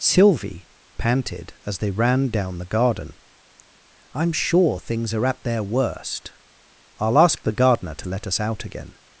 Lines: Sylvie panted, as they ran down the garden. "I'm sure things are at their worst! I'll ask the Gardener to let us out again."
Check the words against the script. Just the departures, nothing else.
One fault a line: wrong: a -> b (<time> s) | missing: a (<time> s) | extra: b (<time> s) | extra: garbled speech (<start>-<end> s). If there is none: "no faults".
no faults